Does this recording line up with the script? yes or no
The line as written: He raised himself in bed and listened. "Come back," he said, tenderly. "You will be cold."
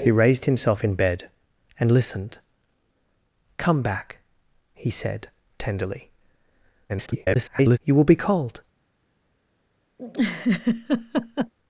no